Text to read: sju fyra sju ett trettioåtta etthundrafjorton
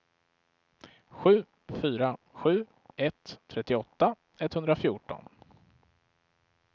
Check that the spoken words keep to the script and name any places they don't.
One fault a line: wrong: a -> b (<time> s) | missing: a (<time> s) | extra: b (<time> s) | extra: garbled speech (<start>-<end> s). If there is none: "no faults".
no faults